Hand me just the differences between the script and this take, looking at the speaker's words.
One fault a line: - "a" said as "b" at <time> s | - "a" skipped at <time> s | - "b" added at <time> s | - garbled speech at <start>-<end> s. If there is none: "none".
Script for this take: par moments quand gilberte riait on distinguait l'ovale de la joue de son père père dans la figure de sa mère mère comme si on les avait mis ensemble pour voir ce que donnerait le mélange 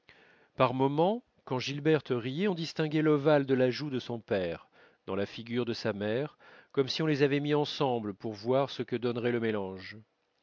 - "père" skipped at 4.7 s
- "mère" skipped at 6.4 s